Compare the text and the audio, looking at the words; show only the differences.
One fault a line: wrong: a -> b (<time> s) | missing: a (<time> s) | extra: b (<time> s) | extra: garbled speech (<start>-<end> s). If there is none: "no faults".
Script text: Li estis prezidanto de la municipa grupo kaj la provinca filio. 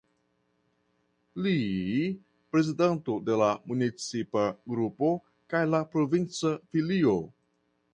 missing: estis (1.5 s)